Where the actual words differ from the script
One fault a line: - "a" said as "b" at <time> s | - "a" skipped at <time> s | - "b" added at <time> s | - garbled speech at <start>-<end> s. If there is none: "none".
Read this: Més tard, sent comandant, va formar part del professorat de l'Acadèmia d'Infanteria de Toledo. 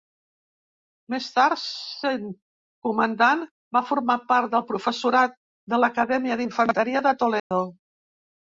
none